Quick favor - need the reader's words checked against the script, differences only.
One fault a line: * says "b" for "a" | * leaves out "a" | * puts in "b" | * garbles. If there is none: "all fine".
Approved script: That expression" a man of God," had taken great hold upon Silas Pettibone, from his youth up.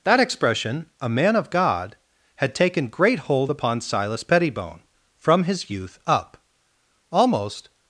* puts in "Almost"